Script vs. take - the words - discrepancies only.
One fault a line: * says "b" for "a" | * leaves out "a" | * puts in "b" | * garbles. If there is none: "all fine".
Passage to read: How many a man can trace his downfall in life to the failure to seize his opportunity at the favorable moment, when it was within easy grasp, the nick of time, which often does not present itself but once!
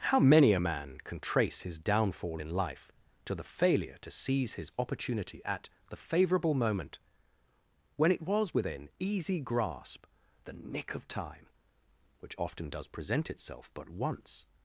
* leaves out "not"